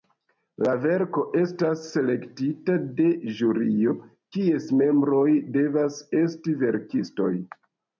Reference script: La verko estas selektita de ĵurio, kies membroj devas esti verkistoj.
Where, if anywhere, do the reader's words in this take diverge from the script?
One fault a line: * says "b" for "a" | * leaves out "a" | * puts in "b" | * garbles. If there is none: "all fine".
all fine